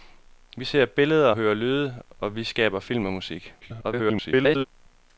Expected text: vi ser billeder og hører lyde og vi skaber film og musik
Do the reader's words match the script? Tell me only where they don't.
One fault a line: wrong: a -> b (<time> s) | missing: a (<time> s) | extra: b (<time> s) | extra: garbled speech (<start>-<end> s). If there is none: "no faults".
missing: og (1.3 s)
extra: garbled speech (3.6-4.7 s)